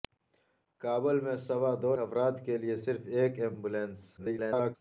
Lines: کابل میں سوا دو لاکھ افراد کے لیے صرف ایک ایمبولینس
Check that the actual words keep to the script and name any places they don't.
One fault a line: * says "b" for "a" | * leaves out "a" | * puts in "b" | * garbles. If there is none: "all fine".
* leaves out "لاکھ"
* garbles